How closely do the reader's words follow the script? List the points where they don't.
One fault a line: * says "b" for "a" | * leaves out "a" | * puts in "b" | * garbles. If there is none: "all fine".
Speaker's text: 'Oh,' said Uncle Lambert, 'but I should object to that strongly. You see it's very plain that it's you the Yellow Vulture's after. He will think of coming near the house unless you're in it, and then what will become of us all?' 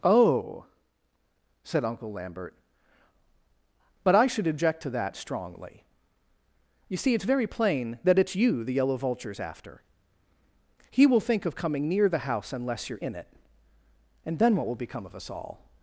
all fine